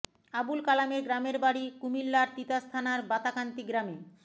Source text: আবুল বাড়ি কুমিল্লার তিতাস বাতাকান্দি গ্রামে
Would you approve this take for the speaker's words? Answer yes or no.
no